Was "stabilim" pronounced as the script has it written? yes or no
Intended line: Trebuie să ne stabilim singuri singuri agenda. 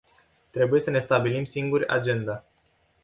yes